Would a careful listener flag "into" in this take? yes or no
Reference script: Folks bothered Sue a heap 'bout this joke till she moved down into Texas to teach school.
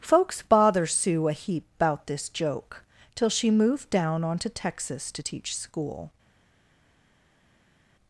yes